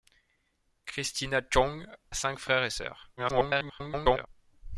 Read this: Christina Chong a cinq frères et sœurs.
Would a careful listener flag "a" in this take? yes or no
yes